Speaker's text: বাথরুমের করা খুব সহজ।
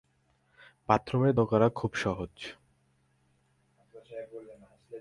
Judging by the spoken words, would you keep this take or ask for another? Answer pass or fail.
pass